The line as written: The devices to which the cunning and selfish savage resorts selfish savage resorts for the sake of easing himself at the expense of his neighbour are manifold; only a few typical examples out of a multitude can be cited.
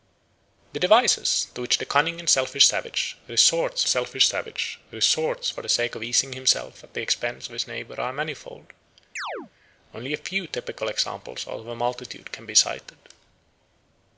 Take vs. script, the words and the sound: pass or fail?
fail